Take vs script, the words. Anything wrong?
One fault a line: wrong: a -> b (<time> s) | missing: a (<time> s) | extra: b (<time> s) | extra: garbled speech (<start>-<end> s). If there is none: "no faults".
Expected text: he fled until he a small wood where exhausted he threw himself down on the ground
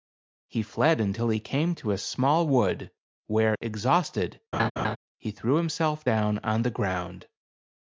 extra: came to (1.4 s)